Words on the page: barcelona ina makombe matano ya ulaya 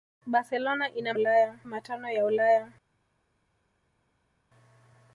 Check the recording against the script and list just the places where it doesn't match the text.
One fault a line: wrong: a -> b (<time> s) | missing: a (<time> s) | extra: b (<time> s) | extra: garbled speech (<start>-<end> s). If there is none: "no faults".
wrong: makombe -> ulaya (1.1 s)